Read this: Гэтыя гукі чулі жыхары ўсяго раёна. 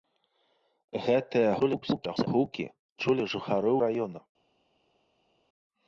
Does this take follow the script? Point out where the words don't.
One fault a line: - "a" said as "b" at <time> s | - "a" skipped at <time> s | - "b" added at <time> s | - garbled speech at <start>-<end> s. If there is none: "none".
- garbled speech at 1.6-2.3 s
- "ўсяго" skipped at 3.7 s